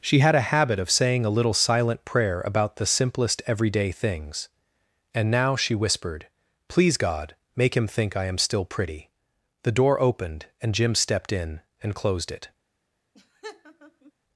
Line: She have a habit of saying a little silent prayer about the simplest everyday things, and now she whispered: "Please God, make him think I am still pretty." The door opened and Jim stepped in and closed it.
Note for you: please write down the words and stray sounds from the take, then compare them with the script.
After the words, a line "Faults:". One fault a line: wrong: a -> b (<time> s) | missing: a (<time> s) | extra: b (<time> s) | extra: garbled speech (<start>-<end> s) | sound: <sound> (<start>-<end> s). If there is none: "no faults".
She had a habit of saying a little silent prayer about the simplest everyday things, and now she whispered: "Please God, make him think I am still pretty." The door opened and Jim stepped in and closed it.
Faults:
wrong: have -> had (0.2 s)
sound: laugh (13.1-14.1 s)